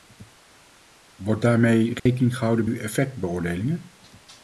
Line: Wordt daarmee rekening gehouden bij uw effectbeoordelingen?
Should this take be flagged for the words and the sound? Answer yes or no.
yes